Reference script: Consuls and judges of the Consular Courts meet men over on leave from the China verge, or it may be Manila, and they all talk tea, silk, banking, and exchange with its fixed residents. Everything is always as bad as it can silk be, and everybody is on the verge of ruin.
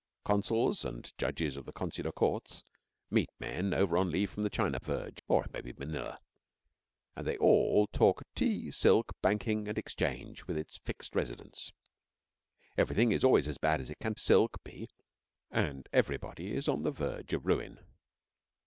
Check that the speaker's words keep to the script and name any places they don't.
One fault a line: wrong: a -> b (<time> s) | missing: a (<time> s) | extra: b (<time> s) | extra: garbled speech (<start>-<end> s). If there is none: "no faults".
no faults